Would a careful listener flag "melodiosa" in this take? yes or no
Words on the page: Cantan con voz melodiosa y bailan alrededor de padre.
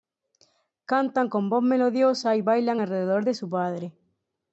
no